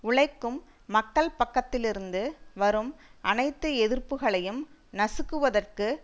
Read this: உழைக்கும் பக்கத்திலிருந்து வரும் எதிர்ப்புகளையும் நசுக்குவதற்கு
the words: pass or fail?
fail